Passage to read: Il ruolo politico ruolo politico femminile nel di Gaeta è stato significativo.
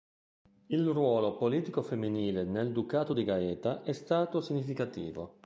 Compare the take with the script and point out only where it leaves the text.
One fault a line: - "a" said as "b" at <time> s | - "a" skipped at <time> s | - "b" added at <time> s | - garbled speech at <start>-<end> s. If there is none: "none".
- "ruolo politico" skipped at 1.8 s
- "ducato" added at 2.7 s